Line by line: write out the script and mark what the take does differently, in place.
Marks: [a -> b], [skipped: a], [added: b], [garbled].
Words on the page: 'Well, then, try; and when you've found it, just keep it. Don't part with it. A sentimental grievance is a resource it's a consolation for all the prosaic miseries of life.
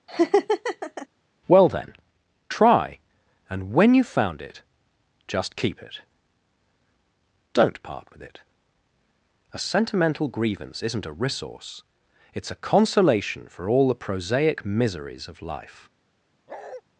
'Well, then, try; and when you've found it, just keep it. Don't part with it. A sentimental grievance [is -> isn't] a resource it's a consolation for all the prosaic miseries of life.